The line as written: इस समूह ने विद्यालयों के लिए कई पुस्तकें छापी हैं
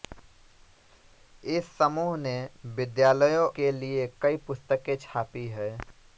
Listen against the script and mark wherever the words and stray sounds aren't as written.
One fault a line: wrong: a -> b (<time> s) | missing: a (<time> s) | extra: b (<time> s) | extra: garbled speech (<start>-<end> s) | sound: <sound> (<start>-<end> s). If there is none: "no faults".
no faults